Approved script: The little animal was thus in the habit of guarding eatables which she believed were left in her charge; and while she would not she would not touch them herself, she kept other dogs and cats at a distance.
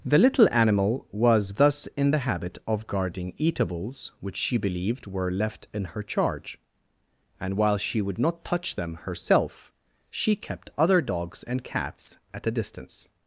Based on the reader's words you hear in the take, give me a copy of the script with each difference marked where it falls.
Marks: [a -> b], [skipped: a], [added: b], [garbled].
The little animal was thus in the habit of guarding eatables which she believed were left in her charge; and while she would not [skipped: she would not] touch them herself, she kept other dogs and cats at a distance.